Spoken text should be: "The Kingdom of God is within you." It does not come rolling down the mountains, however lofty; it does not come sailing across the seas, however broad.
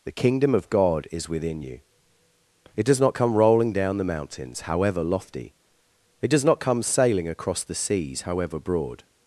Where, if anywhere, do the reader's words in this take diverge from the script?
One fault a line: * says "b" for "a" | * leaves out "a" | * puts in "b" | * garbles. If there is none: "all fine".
all fine